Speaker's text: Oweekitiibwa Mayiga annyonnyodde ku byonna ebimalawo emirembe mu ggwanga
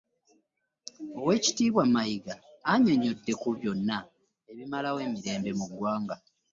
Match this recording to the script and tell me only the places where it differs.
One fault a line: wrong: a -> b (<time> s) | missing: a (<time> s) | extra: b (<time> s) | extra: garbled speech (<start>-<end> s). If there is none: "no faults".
no faults